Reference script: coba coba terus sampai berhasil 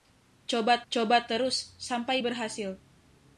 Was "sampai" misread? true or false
false